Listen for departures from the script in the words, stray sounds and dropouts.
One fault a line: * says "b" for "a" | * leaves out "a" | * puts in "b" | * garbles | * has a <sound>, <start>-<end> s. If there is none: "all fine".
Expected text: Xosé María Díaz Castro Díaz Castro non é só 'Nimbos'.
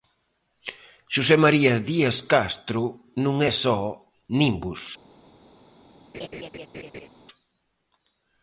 * leaves out "Díaz Castro"
* has a laugh, 6.1-7.1 s